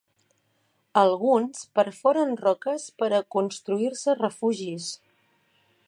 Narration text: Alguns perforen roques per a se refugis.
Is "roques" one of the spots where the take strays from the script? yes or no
no